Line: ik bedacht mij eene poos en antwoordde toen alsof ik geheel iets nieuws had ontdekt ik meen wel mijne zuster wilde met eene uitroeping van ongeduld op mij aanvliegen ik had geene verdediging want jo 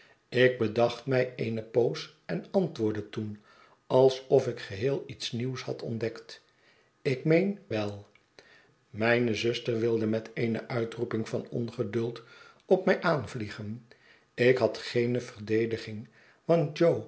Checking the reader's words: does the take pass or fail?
pass